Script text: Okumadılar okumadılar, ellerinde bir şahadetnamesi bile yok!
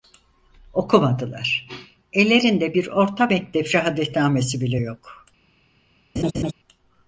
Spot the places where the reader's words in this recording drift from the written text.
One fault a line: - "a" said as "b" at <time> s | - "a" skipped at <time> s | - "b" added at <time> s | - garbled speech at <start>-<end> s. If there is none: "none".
- "okumadılar" skipped at 1.7 s
- "orta mektep" added at 2.9 s